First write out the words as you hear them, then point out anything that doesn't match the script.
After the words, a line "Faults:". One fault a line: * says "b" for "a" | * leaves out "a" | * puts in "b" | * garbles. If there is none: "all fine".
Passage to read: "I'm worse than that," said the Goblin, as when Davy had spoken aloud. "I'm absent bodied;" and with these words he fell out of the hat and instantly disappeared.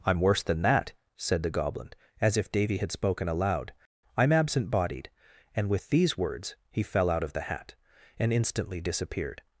"I'm worse than that," said the Goblin, as if Davy had spoken aloud. "I'm absent bodied;" and with these words he fell out of the hat and instantly disappeared.
Faults:
* says "if" for "when"